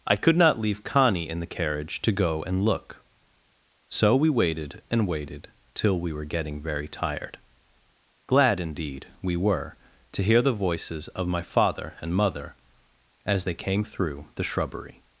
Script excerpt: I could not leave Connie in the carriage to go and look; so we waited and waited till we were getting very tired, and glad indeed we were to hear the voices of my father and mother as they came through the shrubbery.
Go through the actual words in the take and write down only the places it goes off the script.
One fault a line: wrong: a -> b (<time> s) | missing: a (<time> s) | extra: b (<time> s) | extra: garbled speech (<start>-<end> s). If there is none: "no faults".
missing: and (7.4 s)